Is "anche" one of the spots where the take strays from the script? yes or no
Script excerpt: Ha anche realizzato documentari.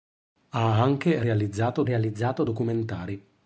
no